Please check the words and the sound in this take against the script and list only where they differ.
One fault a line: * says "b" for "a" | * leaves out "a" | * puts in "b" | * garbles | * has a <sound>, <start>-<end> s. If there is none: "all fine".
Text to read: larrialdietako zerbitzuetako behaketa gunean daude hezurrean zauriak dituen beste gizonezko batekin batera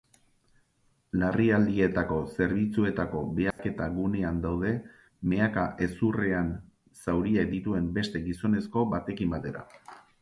* has a dropout, 3.5-3.6 s
* puts in "mehaka"